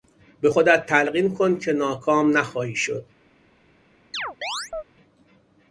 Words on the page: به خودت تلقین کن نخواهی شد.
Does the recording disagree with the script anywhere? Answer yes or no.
yes